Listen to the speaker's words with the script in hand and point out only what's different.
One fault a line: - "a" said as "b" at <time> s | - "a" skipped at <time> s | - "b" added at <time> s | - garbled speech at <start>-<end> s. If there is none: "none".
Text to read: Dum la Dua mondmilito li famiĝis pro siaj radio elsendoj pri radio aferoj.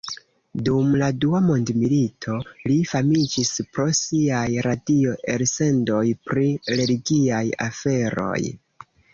- "radio" said as "religiaj" at 6.8 s